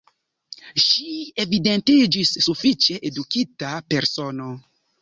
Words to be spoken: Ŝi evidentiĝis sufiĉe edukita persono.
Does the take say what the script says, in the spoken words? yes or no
yes